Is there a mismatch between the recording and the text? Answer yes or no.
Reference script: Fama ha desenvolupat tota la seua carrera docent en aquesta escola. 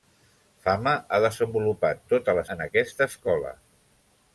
yes